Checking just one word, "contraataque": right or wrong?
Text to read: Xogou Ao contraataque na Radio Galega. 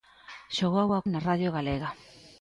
wrong